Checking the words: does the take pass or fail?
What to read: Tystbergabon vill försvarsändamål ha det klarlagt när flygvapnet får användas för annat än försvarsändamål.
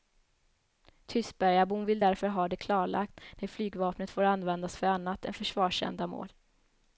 fail